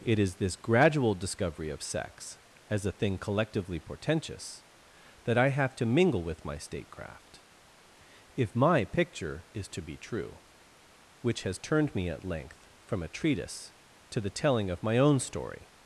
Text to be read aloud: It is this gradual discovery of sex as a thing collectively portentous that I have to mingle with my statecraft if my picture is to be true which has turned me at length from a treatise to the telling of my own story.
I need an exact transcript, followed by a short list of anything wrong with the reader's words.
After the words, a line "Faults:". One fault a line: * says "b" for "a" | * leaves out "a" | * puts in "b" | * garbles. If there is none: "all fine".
It is this gradual discovery of sex as a thing collectively portentous that I have to mingle with my statecraft if my picture is to be true which has turned me at length from a treatise to the telling of my own story.
Faults:
all fine